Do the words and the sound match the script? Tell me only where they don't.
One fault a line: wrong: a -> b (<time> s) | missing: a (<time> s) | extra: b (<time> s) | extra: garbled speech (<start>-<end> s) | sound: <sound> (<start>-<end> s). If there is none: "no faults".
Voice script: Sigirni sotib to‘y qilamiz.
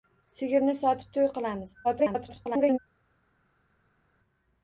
extra: garbled speech (1.8-2.8 s)